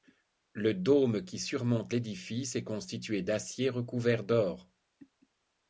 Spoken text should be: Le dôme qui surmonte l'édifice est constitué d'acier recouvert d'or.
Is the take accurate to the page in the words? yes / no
yes